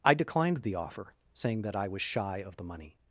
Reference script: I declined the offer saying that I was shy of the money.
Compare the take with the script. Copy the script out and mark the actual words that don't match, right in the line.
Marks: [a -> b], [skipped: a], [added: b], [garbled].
I declined the offer saying that I was shy of the money.